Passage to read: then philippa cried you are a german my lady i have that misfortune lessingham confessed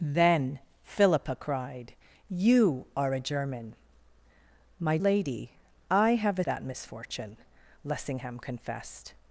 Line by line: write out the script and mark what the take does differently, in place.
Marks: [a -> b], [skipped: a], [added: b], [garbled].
then philippa cried you are a german my lady i have that misfortune lessingham confessed